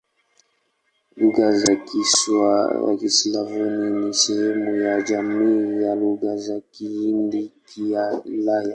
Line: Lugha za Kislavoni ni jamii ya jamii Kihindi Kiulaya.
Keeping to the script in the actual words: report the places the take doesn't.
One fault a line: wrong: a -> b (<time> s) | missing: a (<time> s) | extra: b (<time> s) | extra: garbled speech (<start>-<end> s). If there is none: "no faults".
extra: sehemu ya (4.1 s)
wrong: jamii -> Lugha za (6.0 s)